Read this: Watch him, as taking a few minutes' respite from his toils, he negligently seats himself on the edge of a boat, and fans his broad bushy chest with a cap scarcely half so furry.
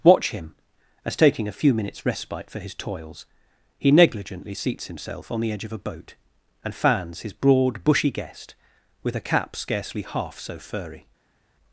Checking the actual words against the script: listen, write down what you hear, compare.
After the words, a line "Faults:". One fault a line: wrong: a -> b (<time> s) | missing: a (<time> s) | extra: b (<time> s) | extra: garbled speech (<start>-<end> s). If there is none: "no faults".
Watch him, as taking a few minutes' respite for his toils, he negligently seats himself on the edge of a boat, and fans his broad bushy guest with a cap scarcely half so furry.
Faults:
wrong: from -> for (2.5 s)
wrong: chest -> guest (8.1 s)